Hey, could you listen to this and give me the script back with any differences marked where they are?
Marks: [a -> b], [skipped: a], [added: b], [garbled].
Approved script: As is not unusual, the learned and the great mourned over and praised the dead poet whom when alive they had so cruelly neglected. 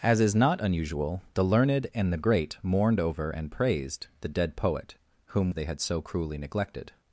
As is not unusual, the learned and the great mourned over and praised the dead poet whom [skipped: when alive] they had so cruelly neglected.